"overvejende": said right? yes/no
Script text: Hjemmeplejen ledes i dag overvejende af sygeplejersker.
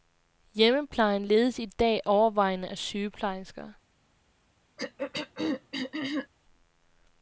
yes